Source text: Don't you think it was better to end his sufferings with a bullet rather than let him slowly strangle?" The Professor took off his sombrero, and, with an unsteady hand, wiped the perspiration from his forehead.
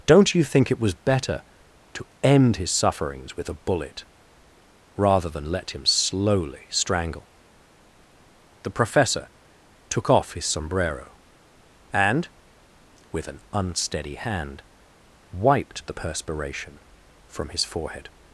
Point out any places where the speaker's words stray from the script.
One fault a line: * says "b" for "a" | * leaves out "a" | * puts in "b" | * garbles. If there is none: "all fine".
all fine